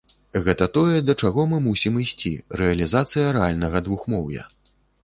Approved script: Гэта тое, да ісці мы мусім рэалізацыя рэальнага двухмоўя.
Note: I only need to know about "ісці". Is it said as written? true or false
false